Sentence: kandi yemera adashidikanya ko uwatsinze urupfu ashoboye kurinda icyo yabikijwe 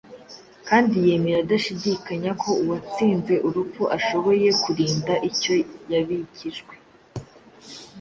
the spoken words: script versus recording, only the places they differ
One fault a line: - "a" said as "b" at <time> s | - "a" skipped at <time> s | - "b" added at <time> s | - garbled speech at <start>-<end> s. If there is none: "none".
none